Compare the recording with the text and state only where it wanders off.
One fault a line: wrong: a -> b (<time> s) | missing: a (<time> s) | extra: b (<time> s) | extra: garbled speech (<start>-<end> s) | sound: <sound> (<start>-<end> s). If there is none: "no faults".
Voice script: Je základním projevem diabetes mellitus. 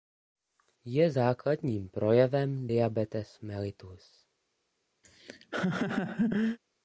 sound: laugh (5.0-6.6 s)